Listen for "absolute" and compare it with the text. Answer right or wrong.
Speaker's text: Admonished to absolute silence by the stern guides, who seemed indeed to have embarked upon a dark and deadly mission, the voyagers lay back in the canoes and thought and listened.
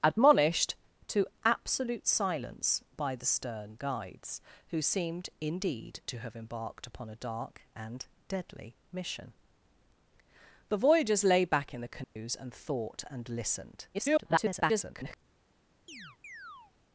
right